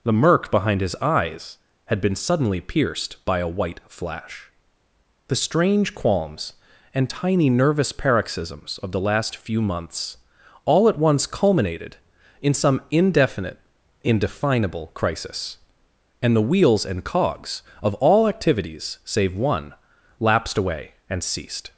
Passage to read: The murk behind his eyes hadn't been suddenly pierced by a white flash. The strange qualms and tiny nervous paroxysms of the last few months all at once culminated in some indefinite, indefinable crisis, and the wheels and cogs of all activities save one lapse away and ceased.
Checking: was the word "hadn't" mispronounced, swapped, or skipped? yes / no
yes